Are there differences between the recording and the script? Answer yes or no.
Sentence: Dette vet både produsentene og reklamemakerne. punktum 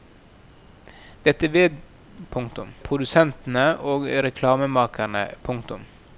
yes